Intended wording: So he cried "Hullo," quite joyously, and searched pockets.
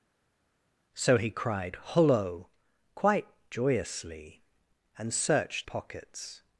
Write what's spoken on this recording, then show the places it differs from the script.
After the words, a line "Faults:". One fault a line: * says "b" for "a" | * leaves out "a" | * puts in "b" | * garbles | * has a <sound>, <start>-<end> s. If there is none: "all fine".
So he cried "Hullo," quite joyously, and searched pockets.
Faults:
all fine